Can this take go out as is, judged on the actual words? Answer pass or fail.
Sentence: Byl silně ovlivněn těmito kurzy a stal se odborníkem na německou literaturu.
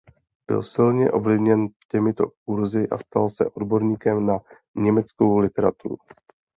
pass